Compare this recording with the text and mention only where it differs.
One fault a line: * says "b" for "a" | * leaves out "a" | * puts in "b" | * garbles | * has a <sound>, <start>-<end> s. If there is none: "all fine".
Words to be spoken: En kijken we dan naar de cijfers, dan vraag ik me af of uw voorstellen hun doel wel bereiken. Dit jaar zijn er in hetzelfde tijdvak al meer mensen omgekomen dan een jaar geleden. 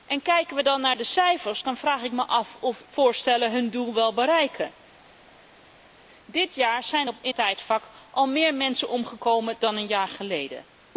* leaves out "uw"
* leaves out "hetzelfde"